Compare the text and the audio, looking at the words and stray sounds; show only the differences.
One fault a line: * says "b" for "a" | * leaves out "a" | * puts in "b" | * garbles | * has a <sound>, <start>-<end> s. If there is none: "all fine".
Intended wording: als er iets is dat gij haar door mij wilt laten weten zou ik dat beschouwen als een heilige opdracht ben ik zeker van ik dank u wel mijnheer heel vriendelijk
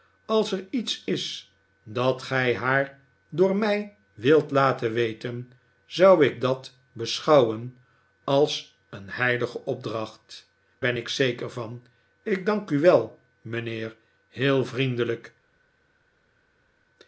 all fine